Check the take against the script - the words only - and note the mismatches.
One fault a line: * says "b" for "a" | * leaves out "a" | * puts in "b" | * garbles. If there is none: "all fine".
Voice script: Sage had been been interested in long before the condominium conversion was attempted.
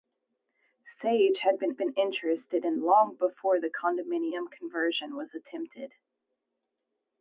all fine